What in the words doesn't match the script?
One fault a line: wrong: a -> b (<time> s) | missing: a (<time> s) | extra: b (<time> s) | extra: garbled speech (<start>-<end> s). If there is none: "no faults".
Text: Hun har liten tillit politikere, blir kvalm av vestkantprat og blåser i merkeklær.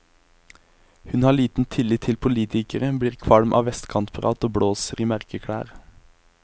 extra: til (2.1 s)